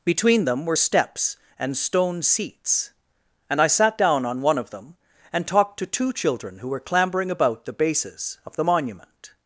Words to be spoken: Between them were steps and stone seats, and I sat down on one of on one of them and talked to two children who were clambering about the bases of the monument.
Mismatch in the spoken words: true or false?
true